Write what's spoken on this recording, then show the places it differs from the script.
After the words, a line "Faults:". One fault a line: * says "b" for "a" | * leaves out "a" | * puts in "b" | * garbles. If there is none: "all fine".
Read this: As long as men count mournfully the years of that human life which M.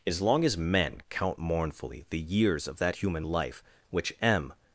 As long as men count mournfully the years of that human life which M.
Faults:
all fine